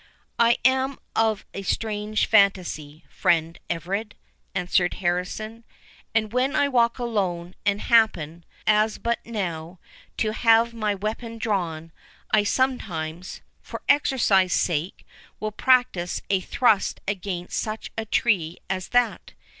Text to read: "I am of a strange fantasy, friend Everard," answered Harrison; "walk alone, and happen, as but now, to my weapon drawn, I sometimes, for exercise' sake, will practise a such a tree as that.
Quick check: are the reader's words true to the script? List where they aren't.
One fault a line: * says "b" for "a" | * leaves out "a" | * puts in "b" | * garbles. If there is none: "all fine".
* puts in "and when I"
* puts in "have"
* puts in "thrust against"